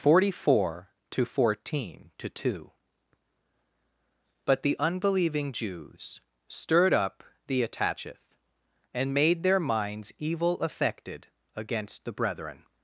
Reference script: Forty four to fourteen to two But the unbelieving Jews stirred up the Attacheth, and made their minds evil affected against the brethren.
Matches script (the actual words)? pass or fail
pass